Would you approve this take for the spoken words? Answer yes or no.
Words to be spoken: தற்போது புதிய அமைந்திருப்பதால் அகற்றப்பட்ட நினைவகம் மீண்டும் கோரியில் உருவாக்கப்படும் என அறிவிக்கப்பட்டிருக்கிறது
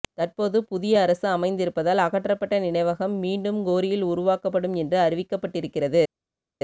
no